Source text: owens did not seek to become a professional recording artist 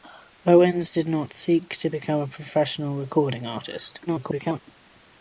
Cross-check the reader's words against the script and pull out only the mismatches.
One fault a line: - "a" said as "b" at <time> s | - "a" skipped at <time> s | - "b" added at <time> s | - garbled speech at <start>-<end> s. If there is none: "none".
- garbled speech at 4.1-4.6 s